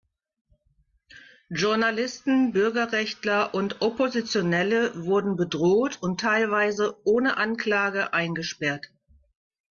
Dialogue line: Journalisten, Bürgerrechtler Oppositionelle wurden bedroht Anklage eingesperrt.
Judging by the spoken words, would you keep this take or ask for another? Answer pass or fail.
fail